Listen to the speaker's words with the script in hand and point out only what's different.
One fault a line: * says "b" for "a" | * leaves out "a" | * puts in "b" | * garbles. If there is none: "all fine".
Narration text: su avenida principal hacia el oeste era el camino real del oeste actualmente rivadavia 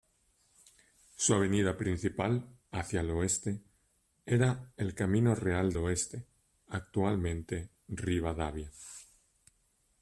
* leaves out "del"